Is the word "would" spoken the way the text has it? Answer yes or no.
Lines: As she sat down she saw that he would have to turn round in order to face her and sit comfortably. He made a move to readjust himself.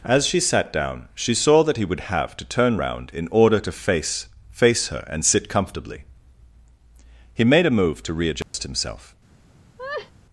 yes